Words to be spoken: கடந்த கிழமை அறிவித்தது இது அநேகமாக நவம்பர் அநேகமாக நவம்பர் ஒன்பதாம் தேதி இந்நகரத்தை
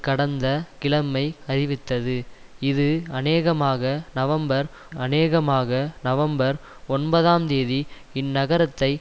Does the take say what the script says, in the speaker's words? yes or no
yes